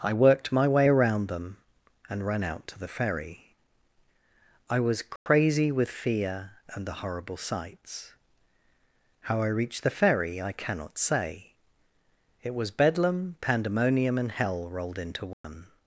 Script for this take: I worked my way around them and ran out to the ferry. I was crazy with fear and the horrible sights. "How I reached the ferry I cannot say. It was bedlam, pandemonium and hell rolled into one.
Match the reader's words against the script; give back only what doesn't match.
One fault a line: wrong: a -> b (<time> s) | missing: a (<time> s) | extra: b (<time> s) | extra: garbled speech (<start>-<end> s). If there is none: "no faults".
no faults